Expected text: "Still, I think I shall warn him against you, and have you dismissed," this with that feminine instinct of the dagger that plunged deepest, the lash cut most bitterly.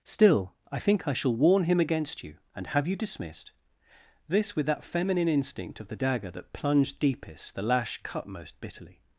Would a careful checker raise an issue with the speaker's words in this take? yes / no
no